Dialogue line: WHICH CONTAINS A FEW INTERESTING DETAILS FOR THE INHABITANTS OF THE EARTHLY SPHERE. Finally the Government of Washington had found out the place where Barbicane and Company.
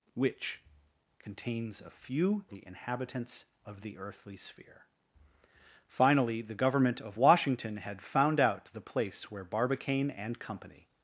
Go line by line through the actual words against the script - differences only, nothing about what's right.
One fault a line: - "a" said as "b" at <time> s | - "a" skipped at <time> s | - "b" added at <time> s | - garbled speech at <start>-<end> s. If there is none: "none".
- "INTERESTING DETAILS FOR" skipped at 2.4 s